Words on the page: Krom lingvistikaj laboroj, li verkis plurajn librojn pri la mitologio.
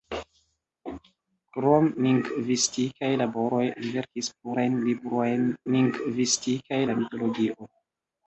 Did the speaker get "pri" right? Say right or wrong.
wrong